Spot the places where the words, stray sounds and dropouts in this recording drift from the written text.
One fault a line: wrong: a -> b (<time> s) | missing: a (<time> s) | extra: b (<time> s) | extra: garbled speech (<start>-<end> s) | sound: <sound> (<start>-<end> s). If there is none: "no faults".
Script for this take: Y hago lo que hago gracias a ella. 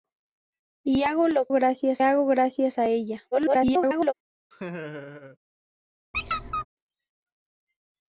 wrong: que -> gracias (1.5 s)
extra: garbled speech (3.3-4.1 s)
sound: laugh (4.5-5.4 s)
sound: squeak (6.1-6.6 s)